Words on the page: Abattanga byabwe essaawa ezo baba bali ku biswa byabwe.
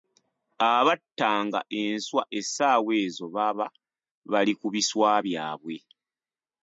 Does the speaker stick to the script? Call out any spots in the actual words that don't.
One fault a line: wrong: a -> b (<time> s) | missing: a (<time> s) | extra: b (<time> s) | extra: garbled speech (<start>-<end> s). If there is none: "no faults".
wrong: byabwe -> enswa (1.8 s)